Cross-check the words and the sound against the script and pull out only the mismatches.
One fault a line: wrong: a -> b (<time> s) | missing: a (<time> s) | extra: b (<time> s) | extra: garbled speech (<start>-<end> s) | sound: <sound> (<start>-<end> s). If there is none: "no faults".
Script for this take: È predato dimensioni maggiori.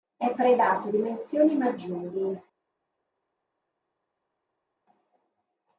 no faults